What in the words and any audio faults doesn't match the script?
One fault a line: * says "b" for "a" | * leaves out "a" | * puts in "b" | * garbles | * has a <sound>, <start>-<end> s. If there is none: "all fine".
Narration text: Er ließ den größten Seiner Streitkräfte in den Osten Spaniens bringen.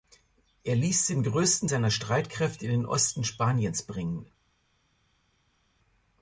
all fine